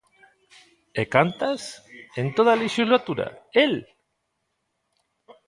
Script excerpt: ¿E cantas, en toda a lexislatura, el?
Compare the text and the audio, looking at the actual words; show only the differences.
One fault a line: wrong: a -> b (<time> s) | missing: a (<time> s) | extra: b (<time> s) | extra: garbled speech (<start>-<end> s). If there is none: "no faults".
no faults